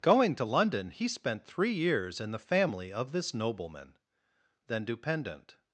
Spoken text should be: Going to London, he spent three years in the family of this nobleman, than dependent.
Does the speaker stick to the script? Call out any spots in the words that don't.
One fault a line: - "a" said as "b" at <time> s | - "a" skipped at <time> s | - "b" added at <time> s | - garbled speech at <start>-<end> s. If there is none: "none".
none